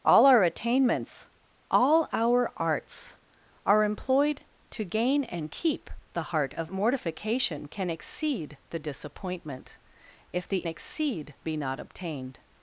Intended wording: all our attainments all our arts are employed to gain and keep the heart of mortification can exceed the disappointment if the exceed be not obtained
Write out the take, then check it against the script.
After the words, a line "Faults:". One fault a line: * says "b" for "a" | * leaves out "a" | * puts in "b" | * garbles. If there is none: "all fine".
all our attainments all our arts are employed to gain and keep the heart of mortification can exceed the disappointment if the exceed be not obtained
Faults:
all fine